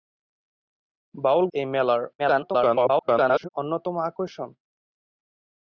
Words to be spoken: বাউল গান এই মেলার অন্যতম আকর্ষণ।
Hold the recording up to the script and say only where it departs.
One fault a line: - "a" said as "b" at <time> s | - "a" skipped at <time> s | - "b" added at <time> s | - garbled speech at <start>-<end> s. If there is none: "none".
- "গান" skipped at 1.4 s
- garbled speech at 2.2-3.5 s